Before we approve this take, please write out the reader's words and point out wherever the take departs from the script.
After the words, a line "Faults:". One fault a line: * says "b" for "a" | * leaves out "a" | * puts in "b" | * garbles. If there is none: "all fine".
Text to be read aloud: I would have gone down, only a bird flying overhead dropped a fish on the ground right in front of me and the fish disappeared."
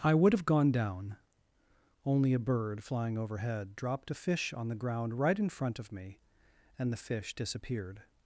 I would have gone down, only a bird flying overhead dropped a fish on the ground right in front of me and the fish disappeared."
Faults:
all fine